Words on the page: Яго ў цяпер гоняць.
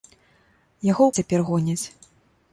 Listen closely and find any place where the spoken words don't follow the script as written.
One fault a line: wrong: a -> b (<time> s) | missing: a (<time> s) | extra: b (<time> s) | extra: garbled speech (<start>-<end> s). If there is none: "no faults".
no faults